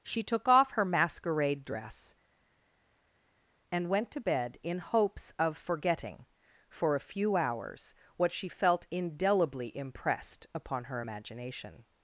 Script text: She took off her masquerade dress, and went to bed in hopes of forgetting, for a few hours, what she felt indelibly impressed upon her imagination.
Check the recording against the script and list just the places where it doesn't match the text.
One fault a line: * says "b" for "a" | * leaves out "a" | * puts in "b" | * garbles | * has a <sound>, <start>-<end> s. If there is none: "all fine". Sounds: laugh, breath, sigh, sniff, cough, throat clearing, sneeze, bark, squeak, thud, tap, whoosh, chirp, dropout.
all fine